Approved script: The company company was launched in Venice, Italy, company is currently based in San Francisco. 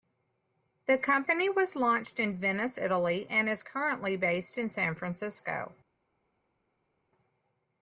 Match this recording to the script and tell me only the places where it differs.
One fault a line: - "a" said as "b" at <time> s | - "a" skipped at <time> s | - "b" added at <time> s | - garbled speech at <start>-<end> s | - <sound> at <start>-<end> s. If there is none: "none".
- "company" skipped at 1.5 s
- "company" said as "and" at 3.3 s